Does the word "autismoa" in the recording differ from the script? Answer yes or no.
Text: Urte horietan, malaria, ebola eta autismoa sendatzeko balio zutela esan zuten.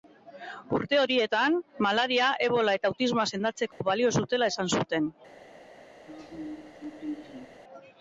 no